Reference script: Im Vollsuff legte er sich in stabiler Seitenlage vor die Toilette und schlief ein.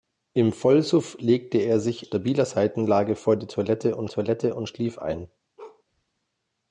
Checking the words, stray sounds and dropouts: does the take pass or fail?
fail